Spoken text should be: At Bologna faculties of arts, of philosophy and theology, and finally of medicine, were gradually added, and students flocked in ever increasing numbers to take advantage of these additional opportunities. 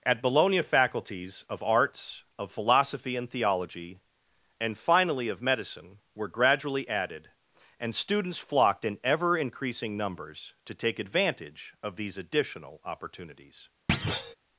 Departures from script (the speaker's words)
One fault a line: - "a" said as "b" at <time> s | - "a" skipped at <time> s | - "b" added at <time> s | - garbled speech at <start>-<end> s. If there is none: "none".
none